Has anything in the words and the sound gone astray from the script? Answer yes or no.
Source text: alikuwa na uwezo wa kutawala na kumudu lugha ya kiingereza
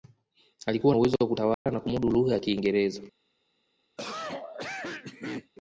yes